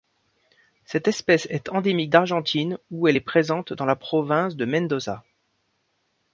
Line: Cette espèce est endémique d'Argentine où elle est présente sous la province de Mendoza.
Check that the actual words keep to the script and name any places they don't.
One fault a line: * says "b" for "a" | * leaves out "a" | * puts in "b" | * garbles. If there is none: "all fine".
* says "dans" for "sous"